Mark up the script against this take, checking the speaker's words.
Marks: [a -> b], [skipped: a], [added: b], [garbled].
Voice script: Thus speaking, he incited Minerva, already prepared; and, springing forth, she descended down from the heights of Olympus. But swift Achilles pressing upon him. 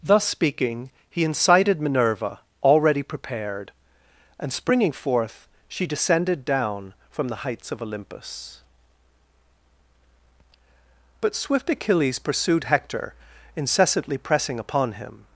Thus speaking, he incited Minerva, already prepared; and, springing forth, she descended down from the heights of Olympus. But swift Achilles [added: pursued Hector incessantly] pressing upon him.